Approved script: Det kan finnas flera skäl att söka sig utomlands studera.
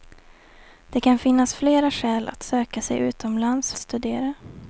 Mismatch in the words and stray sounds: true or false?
false